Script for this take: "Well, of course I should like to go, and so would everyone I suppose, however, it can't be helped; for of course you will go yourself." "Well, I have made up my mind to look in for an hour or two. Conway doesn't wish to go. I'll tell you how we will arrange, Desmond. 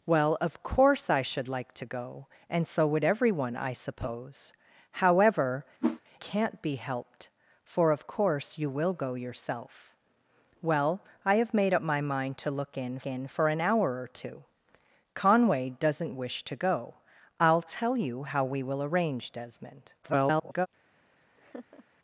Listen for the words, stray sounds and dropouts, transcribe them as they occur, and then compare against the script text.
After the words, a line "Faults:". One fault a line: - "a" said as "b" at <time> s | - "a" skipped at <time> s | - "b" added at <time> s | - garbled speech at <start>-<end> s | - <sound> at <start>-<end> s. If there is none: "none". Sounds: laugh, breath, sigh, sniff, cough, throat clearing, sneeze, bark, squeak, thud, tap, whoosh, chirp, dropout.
"Well, of course I should like to go, and so would everyone I suppose, however, can't be helped; for of course you will go yourself." "Well, I have made up my mind to look in in for an hour or two. Conway doesn't wish to go. I'll tell you how we will arrange, Desmond. [garbled]
Faults:
- "it" skipped at 5.6 s
- whoosh at 5.8-6.0 s
- "in" added at 13.0 s
- garbled speech at 20.0-20.7 s
- laugh at 21.4-21.8 s